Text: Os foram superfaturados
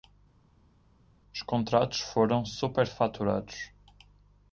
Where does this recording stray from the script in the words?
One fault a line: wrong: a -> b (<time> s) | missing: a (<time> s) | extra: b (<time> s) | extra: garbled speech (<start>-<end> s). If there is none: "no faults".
extra: contratos (1.4 s)